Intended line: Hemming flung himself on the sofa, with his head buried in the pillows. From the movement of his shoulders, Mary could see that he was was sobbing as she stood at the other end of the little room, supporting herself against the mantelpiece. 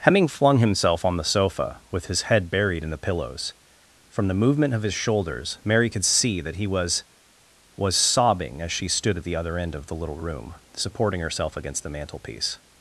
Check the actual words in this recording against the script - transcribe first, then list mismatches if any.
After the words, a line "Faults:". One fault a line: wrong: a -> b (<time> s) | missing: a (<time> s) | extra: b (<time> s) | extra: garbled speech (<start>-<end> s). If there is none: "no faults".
Hemming flung himself on the sofa, with his head buried in the pillows. From the movement of his shoulders, Mary could see that he was was sobbing as she stood at the other end of the little room, supporting herself against the mantelpiece.
Faults:
no faults